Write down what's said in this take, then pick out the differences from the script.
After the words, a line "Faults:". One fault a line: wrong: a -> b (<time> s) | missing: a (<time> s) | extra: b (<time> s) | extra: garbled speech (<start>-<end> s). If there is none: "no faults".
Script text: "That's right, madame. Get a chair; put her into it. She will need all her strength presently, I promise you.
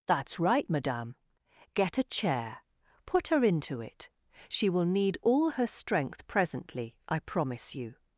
"That's right, madame. Get a chair; put her into it. She will need all her strength presently, I promise you.
Faults:
no faults